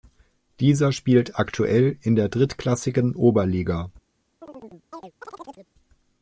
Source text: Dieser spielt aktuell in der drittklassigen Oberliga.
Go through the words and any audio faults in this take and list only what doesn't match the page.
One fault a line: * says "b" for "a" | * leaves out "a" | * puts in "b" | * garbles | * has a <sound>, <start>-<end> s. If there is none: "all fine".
* has a chirp, 4.4-5.7 s